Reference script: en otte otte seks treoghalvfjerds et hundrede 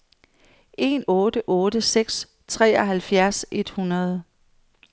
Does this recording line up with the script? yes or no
yes